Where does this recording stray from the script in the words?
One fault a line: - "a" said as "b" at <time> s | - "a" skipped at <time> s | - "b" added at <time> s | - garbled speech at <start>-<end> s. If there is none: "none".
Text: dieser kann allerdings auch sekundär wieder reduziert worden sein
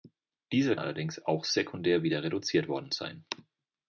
- "kann" skipped at 0.8 s